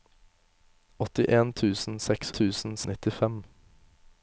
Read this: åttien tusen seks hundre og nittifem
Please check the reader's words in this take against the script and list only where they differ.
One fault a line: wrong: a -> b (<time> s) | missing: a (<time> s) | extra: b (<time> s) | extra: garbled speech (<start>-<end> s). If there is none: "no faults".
wrong: hundre -> tusen (2.4 s)